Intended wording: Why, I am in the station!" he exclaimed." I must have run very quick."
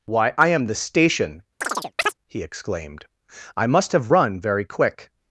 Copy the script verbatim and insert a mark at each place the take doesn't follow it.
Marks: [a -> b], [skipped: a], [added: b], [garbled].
Why, I am [skipped: in] the station!" he exclaimed." I must have run very quick."